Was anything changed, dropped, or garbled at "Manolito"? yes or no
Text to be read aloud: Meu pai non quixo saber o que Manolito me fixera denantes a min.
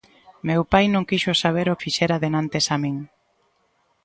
yes